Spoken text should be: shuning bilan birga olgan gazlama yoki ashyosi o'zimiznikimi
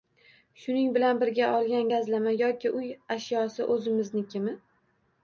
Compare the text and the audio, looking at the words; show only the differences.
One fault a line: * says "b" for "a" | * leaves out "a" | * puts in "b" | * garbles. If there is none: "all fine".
* puts in "uy"